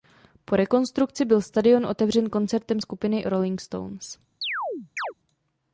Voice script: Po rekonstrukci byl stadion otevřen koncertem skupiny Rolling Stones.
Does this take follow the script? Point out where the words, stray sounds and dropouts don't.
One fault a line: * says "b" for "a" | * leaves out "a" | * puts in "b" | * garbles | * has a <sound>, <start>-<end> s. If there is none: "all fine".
* has a chirp, 4.4-5.1 s